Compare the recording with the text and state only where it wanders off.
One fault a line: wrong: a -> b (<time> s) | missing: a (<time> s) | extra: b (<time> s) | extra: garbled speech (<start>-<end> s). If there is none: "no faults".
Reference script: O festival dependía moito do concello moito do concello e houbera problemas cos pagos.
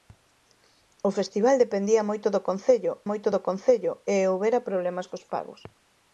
no faults